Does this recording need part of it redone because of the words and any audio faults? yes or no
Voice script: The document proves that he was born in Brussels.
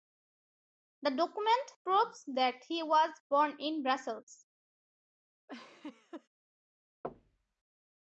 yes